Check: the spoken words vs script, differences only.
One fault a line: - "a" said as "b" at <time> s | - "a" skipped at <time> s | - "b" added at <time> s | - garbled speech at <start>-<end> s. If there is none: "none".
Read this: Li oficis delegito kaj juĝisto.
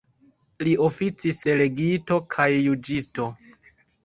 none